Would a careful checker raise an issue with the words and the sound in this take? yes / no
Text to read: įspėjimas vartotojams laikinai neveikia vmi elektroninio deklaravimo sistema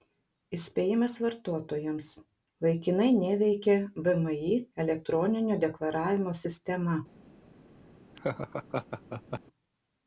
yes